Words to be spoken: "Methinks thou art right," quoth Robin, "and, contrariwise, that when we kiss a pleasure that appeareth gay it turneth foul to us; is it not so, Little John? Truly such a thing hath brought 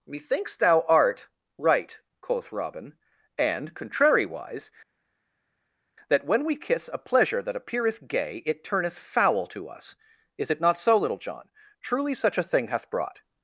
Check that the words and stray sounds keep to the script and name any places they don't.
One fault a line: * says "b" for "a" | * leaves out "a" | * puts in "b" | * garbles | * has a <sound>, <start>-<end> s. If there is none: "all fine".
all fine